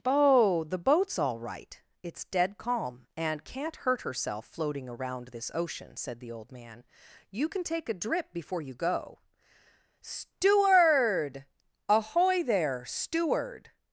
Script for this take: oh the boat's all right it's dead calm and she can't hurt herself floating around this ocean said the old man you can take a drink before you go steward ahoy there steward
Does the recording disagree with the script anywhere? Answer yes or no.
yes